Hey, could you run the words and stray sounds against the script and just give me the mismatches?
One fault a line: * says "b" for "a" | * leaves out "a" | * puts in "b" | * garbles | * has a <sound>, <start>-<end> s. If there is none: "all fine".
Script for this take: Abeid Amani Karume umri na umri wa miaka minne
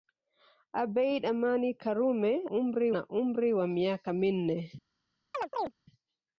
* has a chirp, 5.3-5.7 s